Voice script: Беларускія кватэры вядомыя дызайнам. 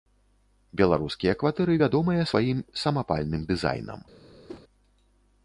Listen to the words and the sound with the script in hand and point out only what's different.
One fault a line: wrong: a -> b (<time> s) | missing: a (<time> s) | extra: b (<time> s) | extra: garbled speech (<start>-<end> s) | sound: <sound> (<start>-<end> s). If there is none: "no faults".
extra: сваім самапальным (2.3 s)
sound: whoosh (4.5-4.6 s)